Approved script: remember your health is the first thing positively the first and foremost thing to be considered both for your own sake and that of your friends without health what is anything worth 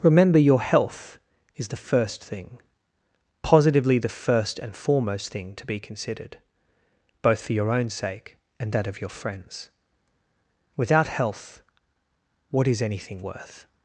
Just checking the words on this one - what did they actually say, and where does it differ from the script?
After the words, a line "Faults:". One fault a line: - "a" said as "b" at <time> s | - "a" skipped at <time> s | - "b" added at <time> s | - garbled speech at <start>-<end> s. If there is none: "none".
remember your health is the first thing positively the first and foremost thing to be considered both for your own sake and that of your friends without health what is anything worth
Faults:
none